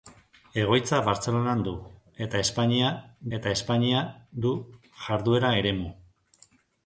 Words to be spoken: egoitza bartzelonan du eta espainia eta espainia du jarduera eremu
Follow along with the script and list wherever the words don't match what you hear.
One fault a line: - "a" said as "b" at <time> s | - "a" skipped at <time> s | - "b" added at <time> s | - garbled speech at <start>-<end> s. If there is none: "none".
none